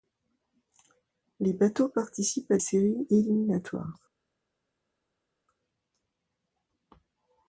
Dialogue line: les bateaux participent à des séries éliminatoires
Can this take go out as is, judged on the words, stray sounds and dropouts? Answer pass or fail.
fail